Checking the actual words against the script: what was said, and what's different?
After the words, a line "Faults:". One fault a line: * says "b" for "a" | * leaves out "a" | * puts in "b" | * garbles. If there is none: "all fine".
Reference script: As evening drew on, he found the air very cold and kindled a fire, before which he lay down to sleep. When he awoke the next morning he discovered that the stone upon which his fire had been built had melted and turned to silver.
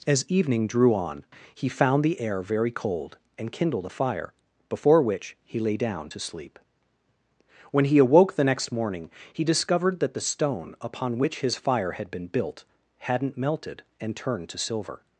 As evening drew on, he found the air very cold and kindled a fire, before which he lay down to sleep. When he awoke the next morning he discovered that the stone upon which his fire had been built hadn't melted and turned to silver.
Faults:
* says "hadn't" for "had"